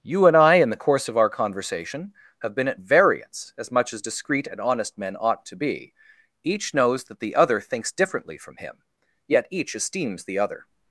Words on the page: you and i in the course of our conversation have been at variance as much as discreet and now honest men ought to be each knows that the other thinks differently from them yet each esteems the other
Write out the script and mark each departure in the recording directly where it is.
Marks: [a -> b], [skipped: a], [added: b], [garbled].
you and i in the course of our conversation have been at variance as much as discreet and [skipped: now] honest men ought to be each knows that the other thinks differently from [them -> him] yet each esteems the other